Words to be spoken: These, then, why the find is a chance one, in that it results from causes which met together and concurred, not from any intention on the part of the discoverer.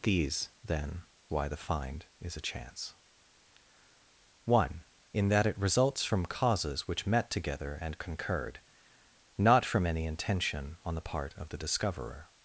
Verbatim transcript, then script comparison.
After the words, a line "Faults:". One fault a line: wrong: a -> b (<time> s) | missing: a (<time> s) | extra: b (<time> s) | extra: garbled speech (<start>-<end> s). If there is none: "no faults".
These, then, why the find is a chance one, in that it results from causes which met together and concurred, not from any intention on the part of the discoverer.
Faults:
no faults